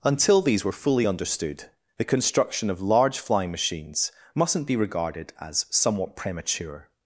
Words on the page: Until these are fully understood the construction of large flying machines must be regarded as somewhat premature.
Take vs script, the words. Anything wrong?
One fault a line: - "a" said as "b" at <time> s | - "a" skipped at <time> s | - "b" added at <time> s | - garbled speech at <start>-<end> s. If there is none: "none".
- "are" said as "were" at 0.7 s
- "must" said as "mustn't" at 4.3 s